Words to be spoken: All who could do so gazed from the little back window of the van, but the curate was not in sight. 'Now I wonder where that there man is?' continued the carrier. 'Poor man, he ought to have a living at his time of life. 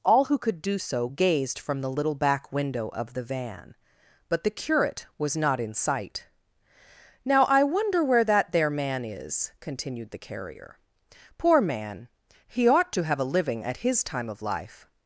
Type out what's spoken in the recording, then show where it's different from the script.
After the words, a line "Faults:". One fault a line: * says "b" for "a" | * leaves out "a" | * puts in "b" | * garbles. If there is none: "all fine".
All who could do so gazed from the little back window of the van, but the curate was not in sight. 'Now I wonder where that there man is?' continued the carrier. 'Poor man, he ought to have a living at his time of life.
Faults:
all fine